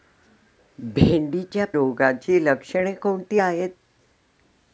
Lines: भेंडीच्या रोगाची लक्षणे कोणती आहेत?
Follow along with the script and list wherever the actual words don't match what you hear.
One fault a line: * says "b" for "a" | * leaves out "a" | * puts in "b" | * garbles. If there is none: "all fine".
all fine